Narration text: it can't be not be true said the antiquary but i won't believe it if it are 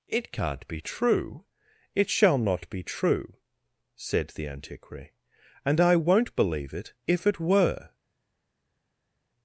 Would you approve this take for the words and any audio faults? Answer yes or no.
no